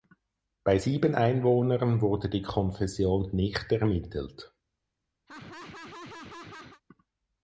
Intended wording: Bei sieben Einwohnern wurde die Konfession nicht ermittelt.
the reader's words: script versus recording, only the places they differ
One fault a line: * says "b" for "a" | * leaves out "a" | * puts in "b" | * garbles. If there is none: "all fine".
all fine